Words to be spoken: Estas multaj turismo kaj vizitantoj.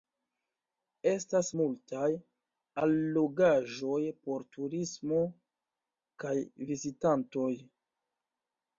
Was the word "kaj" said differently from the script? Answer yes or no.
no